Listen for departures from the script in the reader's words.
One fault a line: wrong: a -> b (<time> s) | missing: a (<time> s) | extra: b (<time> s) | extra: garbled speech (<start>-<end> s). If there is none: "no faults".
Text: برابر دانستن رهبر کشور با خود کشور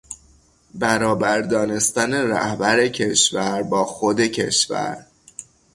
no faults